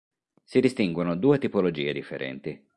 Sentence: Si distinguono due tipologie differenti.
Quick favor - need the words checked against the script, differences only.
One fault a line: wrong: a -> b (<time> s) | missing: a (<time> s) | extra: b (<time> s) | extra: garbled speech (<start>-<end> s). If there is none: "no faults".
no faults